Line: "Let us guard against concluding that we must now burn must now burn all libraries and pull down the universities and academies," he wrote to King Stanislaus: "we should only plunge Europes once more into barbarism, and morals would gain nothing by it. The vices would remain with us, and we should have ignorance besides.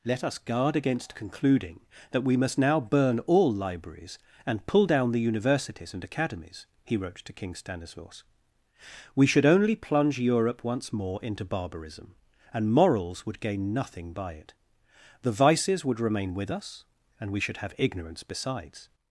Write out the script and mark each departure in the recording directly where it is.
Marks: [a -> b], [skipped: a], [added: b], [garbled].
"Let us guard against concluding that we must now burn [skipped: must now burn] all libraries and pull down the universities and academies," he wrote to King Stanislaus: "we should only plunge [Europes -> Europe] once more into barbarism, and morals would gain nothing by it. The vices would remain with us, and we should have ignorance besides.